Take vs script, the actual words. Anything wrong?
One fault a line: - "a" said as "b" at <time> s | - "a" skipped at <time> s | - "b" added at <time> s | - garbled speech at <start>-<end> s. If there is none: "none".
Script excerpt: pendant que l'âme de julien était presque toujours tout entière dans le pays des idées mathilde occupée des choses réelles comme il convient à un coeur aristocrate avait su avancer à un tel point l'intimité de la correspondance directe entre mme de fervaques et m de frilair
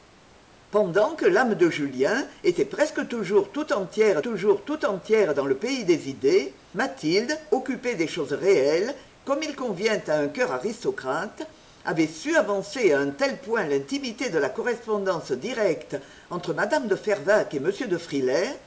- "toujours tout entière" added at 4.2 s